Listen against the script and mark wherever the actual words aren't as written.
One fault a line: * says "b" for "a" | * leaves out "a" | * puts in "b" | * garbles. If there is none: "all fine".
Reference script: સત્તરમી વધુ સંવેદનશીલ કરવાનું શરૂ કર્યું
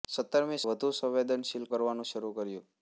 all fine